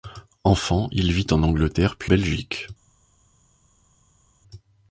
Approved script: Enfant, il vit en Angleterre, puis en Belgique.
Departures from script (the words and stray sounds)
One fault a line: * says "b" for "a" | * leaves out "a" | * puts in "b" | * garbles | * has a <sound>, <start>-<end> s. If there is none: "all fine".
* leaves out "en"